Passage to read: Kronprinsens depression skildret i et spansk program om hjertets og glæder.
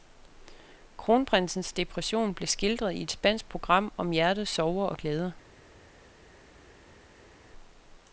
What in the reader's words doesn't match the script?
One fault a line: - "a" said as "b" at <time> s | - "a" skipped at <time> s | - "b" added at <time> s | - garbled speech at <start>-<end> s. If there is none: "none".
- "blev" added at 2.3 s
- "sorger" added at 4.5 s